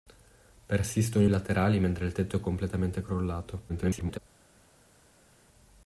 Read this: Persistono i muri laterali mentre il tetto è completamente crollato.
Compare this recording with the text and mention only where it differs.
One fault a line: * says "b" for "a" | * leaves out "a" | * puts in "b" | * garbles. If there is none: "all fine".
* leaves out "muri"
* garbles